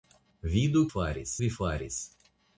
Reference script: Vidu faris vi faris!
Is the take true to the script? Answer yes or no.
yes